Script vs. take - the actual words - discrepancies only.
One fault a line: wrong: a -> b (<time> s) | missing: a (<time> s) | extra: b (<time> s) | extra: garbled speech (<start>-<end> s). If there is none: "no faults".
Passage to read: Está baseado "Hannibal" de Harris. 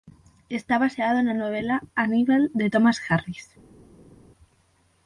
extra: na novela (1.2 s)
extra: Thomas (2.7 s)